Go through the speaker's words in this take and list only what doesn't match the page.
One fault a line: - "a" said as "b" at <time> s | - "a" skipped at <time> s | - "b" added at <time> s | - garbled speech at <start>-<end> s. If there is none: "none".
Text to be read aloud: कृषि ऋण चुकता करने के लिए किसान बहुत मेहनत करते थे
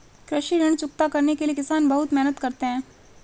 - "थे" said as "हैं" at 2.6 s